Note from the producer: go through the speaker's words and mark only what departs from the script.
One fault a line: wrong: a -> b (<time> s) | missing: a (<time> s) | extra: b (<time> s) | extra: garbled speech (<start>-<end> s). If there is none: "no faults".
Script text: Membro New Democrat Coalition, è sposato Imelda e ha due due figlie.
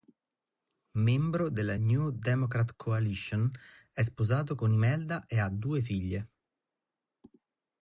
extra: della (1.5 s)
extra: con (4.5 s)
missing: due (5.8 s)